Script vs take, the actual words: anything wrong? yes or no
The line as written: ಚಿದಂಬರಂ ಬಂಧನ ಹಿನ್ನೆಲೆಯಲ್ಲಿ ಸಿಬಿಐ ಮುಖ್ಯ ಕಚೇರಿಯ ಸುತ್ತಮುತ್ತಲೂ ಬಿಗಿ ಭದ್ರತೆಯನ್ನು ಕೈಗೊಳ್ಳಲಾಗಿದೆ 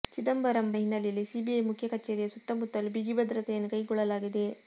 yes